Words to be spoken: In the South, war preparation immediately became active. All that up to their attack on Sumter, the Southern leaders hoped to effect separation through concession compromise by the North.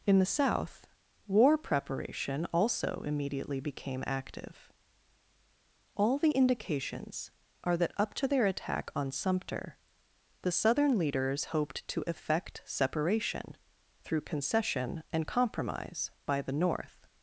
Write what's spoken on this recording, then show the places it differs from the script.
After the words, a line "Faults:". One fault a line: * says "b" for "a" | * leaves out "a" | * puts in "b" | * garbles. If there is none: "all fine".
In the South, war preparation also immediately became active. All the indications are that up to their attack on Sumter, the Southern leaders hoped to effect separation through concession and compromise by the North.
Faults:
* puts in "also"
* puts in "the indications are"
* puts in "and"